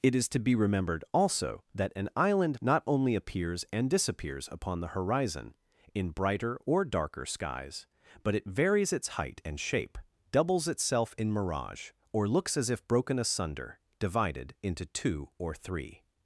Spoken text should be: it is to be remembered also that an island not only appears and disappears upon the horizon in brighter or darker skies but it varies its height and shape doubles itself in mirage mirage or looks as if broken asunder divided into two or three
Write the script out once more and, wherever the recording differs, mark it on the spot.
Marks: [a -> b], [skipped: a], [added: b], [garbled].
it is to be remembered also that an island not only appears and disappears upon the horizon in brighter or darker skies but it varies its height and shape doubles itself in mirage [skipped: mirage] or looks as if broken asunder divided into two or three